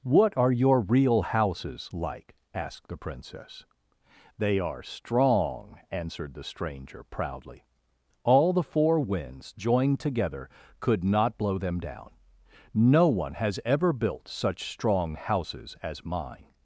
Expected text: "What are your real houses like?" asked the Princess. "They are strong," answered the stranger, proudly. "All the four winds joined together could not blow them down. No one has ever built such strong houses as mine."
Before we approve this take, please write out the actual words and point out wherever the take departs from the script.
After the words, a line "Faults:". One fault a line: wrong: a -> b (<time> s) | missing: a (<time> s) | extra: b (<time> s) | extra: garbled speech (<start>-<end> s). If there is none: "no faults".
"What are your real houses like?" asked the Princess. "They are strong," answered the stranger, proudly. "All the four winds joined together could not blow them down. No one has ever built such strong houses as mine."
Faults:
no faults